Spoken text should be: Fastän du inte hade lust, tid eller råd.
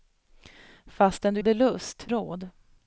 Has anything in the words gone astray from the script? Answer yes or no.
yes